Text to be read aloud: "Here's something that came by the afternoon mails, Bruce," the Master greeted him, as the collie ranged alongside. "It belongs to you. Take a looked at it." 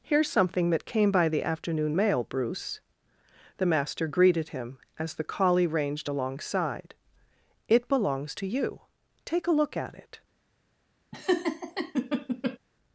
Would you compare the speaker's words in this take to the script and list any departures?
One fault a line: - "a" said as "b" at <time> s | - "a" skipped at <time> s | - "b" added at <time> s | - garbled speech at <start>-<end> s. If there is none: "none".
- "mails" said as "mail" at 1.9 s
- "looked" said as "look" at 9.5 s